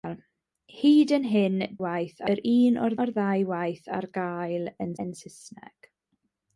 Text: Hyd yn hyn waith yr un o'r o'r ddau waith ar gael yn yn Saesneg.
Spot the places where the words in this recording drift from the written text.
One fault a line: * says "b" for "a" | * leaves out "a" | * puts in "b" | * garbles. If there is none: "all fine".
all fine